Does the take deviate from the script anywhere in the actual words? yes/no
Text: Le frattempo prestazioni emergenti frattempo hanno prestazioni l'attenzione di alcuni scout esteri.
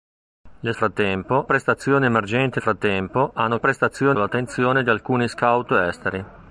no